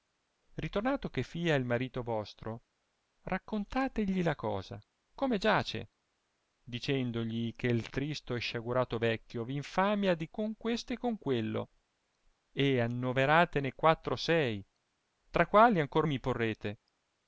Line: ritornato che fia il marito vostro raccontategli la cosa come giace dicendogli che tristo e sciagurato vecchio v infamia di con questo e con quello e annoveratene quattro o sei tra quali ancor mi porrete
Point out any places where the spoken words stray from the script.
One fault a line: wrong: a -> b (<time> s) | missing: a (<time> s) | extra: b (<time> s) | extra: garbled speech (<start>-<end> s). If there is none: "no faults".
no faults